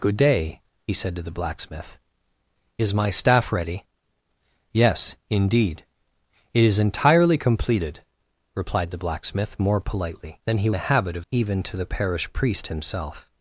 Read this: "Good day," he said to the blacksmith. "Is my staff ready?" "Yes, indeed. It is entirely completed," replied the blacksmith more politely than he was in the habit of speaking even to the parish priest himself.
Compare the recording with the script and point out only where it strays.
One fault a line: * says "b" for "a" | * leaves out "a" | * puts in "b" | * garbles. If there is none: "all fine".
* leaves out "was in"
* leaves out "speaking"